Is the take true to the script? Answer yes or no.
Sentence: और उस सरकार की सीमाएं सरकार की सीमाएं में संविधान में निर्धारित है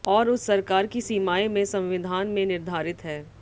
no